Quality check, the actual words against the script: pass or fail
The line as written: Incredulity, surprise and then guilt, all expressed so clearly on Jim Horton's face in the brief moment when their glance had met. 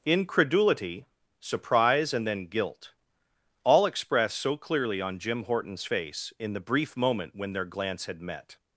pass